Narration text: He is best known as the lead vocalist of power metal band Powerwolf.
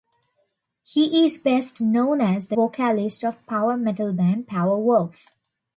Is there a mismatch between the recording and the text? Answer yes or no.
yes